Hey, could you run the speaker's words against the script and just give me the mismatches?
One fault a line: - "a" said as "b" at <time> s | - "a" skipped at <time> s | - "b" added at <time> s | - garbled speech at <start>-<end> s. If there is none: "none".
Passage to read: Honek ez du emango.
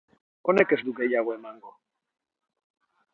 - "gehiago" added at 1.0 s